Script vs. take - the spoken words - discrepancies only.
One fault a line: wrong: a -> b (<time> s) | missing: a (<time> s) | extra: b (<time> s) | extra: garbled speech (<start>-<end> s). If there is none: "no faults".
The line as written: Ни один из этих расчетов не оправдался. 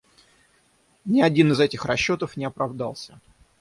no faults